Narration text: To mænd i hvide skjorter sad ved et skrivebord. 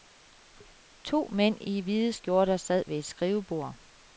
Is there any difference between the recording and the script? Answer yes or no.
no